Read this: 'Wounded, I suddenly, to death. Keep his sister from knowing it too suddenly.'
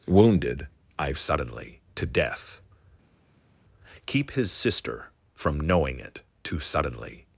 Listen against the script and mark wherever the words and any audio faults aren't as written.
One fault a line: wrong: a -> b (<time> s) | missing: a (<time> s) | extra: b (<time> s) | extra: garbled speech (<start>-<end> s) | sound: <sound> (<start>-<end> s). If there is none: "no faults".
no faults